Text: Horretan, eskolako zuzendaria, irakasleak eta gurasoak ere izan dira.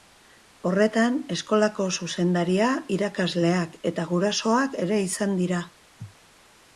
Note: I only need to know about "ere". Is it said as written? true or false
true